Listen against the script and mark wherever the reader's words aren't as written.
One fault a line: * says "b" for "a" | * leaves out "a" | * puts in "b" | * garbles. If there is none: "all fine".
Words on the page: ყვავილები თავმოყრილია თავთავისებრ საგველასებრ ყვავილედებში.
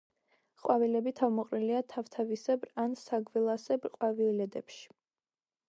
* puts in "ან"